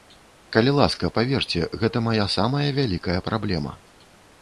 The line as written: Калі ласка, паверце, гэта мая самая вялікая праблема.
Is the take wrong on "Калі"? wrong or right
right